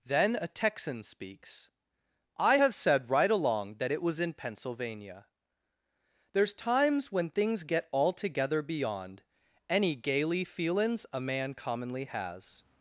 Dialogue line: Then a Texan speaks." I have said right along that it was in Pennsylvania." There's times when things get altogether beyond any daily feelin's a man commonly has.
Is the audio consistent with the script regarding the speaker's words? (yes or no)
no